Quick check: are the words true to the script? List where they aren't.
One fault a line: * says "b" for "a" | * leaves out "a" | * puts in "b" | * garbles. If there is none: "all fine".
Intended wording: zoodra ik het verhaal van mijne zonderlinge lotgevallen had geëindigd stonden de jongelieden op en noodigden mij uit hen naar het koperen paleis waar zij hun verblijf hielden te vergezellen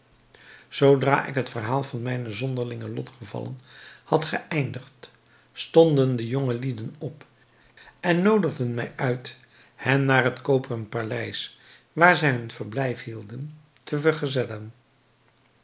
all fine